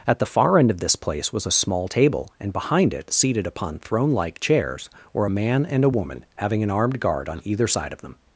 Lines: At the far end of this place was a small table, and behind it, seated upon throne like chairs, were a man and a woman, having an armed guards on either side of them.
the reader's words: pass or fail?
fail